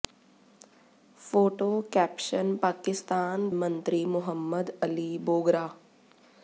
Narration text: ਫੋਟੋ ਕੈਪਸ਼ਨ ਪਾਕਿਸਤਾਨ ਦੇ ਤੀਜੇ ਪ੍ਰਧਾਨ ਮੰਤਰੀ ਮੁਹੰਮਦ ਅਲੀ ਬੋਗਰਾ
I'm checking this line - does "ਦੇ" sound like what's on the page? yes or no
no